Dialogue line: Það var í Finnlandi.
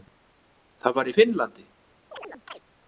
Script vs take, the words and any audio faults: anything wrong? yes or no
yes